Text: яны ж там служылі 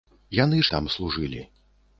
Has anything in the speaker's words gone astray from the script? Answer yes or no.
no